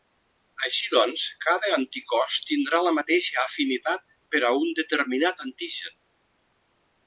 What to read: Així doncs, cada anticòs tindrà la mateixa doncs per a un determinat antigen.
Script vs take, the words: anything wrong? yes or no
yes